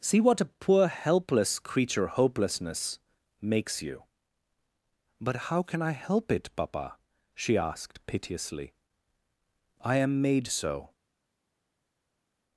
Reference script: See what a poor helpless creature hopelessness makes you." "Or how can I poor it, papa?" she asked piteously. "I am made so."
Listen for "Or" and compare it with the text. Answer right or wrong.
wrong